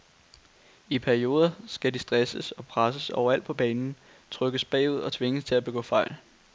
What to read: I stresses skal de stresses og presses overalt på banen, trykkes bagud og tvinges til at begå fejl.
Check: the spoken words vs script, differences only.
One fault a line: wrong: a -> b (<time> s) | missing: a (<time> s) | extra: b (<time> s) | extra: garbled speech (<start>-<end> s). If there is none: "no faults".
wrong: stresses -> perioder (1.0 s)